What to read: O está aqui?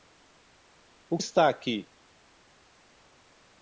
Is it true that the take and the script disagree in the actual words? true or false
false